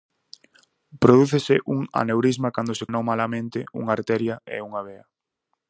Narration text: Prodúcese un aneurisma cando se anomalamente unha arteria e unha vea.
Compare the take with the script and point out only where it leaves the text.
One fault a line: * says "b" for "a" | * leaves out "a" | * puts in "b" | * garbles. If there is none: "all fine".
all fine